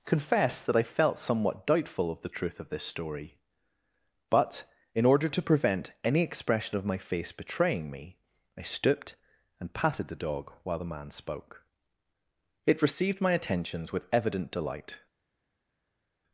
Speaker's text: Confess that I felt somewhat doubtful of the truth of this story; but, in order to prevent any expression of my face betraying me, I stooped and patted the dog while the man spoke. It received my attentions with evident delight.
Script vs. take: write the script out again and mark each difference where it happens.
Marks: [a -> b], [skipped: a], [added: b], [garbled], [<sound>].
Confess that I felt somewhat doubtful of the truth of this story; but, in order to prevent any expression of my face betraying me, I stooped and patted the dog while the man spoke. It received my attentions with evident delight.